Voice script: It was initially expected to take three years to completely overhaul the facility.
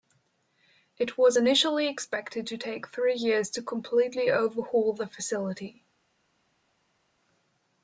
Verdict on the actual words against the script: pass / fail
pass